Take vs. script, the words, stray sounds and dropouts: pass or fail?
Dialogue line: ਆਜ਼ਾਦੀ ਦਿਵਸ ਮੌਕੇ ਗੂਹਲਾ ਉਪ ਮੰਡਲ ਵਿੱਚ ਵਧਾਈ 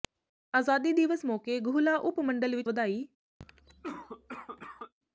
fail